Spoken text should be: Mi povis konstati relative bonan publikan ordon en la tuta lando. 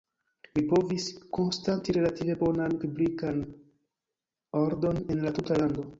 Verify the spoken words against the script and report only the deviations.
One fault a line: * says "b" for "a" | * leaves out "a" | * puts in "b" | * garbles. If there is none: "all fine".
all fine